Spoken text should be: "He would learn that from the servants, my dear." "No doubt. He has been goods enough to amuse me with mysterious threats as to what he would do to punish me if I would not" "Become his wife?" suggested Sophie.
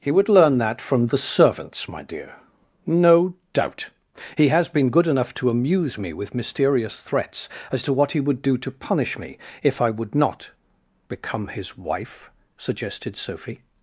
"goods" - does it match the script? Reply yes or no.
no